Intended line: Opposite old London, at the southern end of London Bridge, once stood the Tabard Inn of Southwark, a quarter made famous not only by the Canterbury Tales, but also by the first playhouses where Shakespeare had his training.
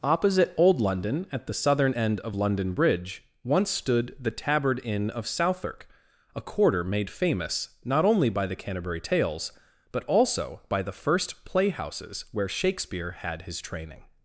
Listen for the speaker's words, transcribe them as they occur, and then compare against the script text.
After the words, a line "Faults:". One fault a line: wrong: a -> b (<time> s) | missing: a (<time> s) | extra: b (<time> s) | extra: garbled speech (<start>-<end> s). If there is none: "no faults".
Opposite old London, at the southern end of London Bridge, once stood the Tabard Inn of Southwark, a quarter made famous not only by the Canterbury Tales, but also by the first playhouses where Shakespeare had his training.
Faults:
no faults